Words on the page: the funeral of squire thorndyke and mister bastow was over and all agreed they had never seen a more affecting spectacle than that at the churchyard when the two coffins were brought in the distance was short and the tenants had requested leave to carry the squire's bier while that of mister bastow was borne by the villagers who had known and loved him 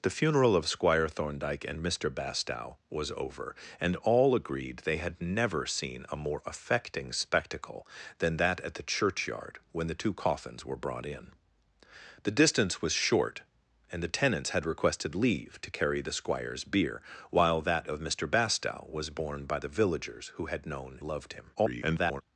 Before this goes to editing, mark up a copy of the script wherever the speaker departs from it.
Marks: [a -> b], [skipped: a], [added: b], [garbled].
the funeral of squire thorndyke and mister bastow was over and all agreed they had never seen a more affecting spectacle than that at the churchyard when the two coffins were brought in the distance was short and the tenants had requested leave to carry the squire's bier while that of mister bastow was borne by the villagers who had known [skipped: and] loved him [garbled]